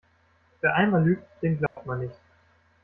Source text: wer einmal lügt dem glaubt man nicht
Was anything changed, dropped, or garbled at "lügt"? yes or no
no